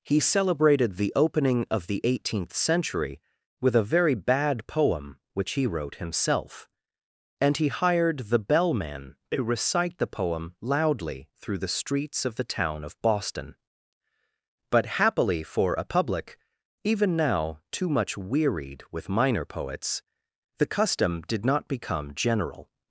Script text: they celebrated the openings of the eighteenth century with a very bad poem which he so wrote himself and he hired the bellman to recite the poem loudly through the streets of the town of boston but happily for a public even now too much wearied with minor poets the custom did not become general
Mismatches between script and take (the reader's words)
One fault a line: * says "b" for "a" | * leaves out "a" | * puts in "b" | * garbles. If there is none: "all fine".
* says "he" for "they"
* says "opening" for "openings"
* leaves out "so"